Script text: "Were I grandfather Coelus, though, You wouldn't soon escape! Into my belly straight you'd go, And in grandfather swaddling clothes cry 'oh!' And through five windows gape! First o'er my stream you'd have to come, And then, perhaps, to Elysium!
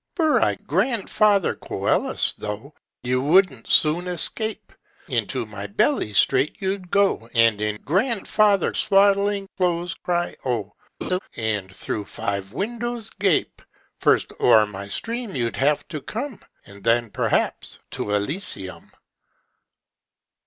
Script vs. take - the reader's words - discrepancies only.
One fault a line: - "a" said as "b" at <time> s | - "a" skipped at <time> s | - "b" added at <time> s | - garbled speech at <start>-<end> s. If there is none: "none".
none